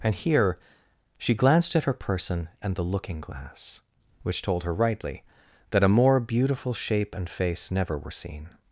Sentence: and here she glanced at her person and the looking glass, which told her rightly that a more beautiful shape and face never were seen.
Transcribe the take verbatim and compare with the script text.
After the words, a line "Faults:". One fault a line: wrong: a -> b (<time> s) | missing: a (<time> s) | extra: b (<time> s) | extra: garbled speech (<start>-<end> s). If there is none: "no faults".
and here she glanced at her person and the looking glass, which told her rightly that a more beautiful shape and face never were seen.
Faults:
no faults